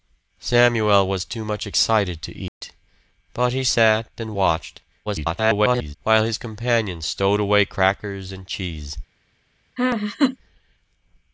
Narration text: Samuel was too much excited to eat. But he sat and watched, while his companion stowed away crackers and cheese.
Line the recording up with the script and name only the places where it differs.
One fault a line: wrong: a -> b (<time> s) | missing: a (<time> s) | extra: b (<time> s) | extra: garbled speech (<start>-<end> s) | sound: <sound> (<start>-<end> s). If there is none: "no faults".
sound: dropout (2.5-2.6 s)
extra: garbled speech (5.1-6.0 s)
sound: laugh (9.8-10.4 s)